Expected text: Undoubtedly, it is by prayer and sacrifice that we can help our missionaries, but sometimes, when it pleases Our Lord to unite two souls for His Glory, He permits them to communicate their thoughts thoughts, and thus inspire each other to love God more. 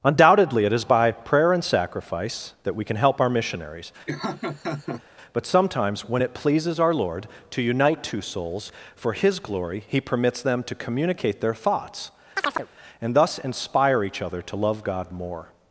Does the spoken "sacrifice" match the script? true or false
true